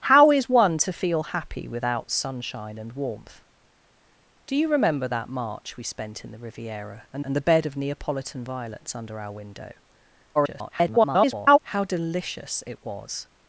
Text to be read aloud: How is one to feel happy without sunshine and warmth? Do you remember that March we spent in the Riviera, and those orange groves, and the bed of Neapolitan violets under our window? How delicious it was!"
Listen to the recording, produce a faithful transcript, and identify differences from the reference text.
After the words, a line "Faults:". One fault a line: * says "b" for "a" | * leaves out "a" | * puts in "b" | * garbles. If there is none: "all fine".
How is one to feel happy without sunshine and warmth? Do you remember that March we spent in the Riviera, and and the bed of Neapolitan violets under our window? [garbled] How delicious it was!"
Faults:
* leaves out "those orange groves"
* garbles